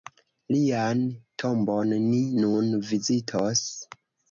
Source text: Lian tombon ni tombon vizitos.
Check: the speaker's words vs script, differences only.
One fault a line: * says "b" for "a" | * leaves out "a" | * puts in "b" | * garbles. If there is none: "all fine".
* says "nun" for "tombon"